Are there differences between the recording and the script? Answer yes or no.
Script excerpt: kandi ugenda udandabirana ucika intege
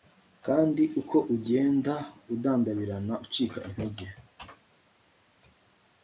yes